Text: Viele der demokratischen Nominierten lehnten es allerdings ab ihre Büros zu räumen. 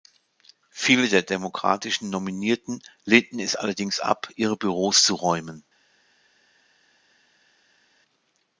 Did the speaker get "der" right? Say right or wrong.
right